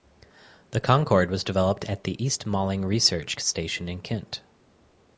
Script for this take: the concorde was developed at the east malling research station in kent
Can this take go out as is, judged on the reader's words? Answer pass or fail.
pass